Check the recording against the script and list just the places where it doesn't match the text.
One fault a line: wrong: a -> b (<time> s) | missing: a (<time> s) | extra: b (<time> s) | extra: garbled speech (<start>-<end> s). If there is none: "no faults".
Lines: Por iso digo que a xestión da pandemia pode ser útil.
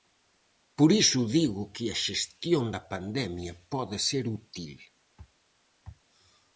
no faults